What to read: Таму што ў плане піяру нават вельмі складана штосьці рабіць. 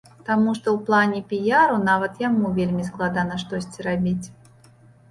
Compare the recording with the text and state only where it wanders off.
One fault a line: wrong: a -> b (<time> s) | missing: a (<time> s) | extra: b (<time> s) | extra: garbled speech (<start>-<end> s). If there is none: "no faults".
extra: яму (2.3 s)